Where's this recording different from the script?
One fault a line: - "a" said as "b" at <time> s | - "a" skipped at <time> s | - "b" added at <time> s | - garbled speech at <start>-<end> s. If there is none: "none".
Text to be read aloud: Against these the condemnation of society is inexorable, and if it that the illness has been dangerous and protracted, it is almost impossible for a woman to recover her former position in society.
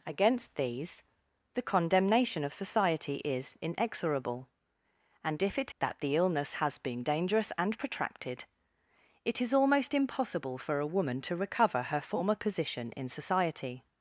none